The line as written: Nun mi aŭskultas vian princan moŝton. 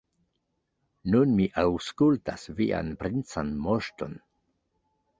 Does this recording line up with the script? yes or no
yes